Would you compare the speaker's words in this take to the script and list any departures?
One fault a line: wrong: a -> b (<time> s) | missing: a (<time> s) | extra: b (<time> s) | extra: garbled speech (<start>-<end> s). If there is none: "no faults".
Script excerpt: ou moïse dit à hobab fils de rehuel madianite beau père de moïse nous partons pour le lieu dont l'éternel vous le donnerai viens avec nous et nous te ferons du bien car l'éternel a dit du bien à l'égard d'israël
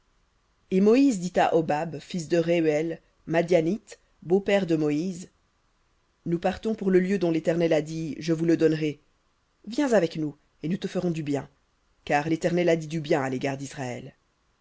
wrong: ou -> et (0.7 s)
extra: a dit je (7.7 s)